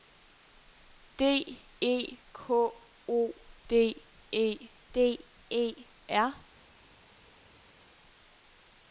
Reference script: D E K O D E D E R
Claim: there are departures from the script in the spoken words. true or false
false